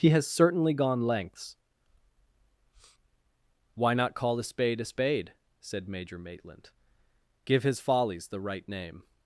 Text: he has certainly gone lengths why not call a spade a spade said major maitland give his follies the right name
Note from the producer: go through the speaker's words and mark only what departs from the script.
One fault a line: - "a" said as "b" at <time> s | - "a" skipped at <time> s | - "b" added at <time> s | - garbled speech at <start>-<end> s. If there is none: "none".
none